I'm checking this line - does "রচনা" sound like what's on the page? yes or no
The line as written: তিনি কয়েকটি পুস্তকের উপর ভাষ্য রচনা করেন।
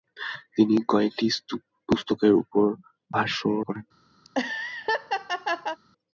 no